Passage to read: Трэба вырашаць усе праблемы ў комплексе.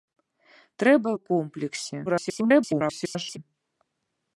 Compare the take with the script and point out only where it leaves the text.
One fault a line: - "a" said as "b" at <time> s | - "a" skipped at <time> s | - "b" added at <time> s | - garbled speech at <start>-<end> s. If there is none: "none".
- "вырашаць усе праблемы" skipped at 1.1 s
- garbled speech at 2.1-3.4 s